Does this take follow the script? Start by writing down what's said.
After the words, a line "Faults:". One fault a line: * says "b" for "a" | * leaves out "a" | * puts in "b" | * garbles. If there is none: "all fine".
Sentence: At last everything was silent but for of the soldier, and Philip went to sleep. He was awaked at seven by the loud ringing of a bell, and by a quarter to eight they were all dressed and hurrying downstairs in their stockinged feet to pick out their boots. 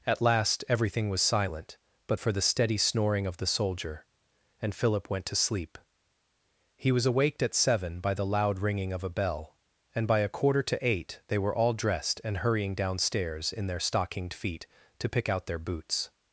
At last everything was silent but for the steady snoring of the soldier, and Philip went to sleep. He was awaked at seven by the loud ringing of a bell, and by a quarter to eight they were all dressed and hurrying downstairs in their stockinged feet to pick out their boots.
Faults:
* puts in "the steady snoring"